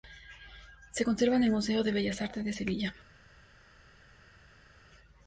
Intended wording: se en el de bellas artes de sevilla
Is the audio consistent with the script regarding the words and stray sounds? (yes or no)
no